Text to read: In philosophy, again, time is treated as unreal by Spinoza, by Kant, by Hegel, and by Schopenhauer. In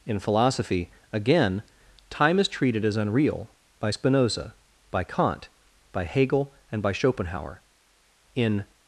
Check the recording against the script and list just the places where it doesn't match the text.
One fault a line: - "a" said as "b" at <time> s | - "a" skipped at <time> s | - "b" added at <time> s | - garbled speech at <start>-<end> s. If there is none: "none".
none